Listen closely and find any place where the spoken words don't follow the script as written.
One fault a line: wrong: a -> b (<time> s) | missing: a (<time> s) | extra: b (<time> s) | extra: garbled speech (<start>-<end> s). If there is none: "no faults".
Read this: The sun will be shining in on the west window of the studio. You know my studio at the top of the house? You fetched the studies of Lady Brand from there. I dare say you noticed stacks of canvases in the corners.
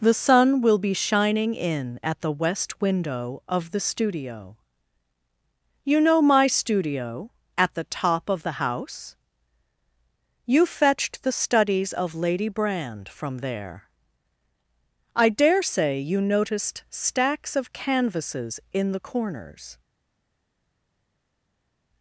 wrong: on -> at (2.0 s)